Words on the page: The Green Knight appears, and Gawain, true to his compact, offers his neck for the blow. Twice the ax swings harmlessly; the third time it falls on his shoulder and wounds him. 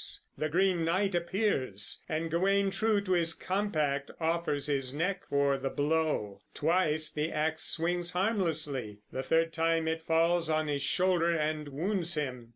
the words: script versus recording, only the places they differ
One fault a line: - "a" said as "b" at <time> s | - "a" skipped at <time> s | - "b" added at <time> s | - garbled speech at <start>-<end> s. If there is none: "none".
none